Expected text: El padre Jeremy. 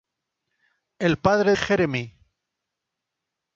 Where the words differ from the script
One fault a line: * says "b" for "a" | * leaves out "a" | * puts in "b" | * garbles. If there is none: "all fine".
all fine